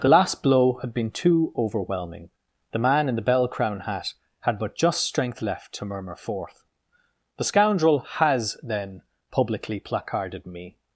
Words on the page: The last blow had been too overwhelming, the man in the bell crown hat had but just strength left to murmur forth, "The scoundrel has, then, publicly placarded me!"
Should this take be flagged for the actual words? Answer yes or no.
no